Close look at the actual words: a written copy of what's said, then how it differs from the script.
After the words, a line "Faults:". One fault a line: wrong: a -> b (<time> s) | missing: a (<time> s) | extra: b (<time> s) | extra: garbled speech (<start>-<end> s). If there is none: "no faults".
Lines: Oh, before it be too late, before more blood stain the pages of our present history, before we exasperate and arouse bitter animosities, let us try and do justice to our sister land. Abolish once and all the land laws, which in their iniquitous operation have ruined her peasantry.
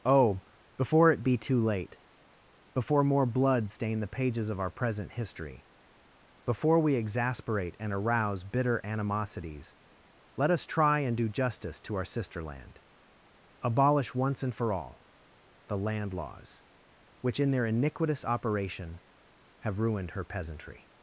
Oh, before it be too late, before more blood stain the pages of our present history, before we exasperate and arouse bitter animosities, let us try and do justice to our sister land. Abolish once and for all the land laws, which in their iniquitous operation have ruined her peasantry.
Faults:
extra: for (14.5 s)